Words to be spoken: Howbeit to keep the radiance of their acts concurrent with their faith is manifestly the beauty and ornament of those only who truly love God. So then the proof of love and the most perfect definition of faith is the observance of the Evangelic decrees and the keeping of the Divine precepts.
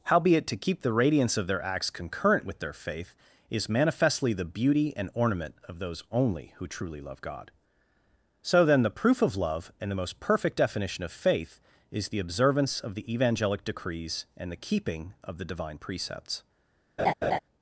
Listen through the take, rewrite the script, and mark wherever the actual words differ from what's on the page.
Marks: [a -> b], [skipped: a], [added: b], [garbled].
Howbeit to keep the radiance of their acts concurrent with their faith is manifestly the beauty and ornament of those only who truly love God. So then the proof of love and the most perfect definition of faith is the observance of the Evangelic decrees and the keeping of the Divine precepts.